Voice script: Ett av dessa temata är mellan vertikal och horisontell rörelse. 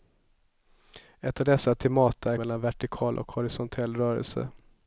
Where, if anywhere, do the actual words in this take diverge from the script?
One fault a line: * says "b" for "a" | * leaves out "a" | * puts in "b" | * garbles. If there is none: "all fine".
all fine